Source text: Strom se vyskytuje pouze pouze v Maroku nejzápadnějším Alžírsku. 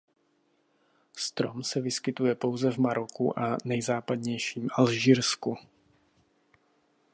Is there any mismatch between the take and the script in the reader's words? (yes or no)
yes